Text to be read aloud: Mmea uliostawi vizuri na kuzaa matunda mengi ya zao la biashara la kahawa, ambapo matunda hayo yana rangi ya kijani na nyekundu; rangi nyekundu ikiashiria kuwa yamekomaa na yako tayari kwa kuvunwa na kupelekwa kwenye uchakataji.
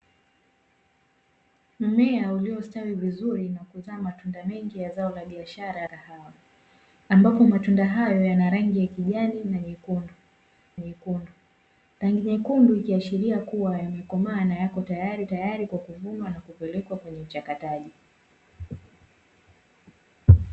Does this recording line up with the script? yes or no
no